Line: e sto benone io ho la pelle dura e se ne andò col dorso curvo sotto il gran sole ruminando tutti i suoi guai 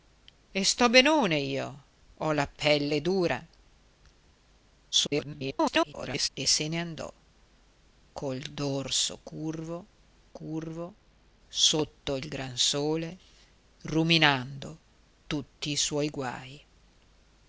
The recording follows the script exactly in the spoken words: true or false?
false